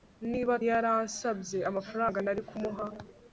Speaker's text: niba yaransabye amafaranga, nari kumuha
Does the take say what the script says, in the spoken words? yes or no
yes